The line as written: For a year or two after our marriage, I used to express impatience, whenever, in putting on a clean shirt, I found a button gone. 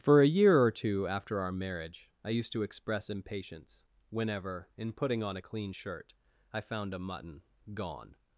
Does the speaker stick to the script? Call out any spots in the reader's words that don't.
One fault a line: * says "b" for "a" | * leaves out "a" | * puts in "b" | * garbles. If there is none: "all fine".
* says "mutton" for "button"